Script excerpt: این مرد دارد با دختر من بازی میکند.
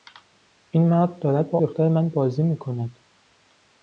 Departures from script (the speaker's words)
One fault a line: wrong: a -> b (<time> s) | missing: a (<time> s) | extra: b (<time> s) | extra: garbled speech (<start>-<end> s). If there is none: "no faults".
no faults